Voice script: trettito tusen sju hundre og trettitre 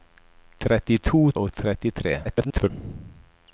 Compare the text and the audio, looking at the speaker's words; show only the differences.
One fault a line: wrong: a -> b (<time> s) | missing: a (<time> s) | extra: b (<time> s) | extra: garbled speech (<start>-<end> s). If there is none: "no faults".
missing: tusen sju hundre (1.2 s)
extra: garbled speech (2.2-2.7 s)